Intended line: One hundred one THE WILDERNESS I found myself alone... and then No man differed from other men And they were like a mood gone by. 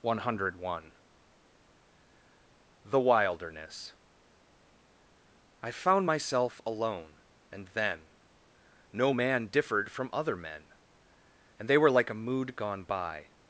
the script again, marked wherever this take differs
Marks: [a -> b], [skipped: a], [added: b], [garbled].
One hundred one THE WILDERNESS I found myself alone... and then No man differed from other men And they were like a mood gone by.